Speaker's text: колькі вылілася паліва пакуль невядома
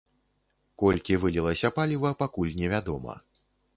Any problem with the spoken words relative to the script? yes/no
no